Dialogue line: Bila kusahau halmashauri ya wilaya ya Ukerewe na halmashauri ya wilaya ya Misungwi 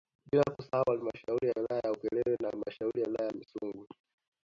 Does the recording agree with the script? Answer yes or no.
yes